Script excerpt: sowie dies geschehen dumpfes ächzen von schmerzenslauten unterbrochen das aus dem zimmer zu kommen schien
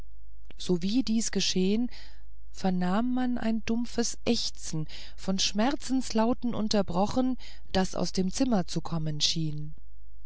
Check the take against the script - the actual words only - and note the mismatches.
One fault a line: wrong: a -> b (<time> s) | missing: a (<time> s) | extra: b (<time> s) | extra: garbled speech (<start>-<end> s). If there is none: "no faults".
extra: vernahm man ein (2.5 s)